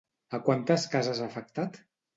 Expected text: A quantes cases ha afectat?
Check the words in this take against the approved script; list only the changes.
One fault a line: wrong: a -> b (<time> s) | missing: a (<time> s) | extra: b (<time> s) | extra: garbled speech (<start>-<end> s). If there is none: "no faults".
no faults